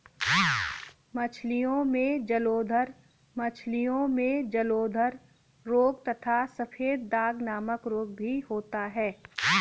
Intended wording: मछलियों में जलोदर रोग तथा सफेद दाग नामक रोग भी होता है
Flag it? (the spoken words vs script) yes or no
yes